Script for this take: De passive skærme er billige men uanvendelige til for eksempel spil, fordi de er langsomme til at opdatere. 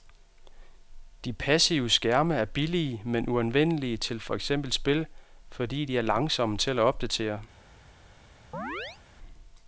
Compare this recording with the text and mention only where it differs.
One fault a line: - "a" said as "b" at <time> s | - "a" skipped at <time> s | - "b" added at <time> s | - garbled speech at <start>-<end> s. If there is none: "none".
none